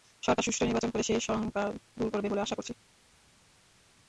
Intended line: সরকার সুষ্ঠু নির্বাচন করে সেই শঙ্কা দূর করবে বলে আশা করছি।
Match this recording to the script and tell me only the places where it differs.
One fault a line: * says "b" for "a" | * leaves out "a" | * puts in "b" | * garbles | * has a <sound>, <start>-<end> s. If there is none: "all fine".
all fine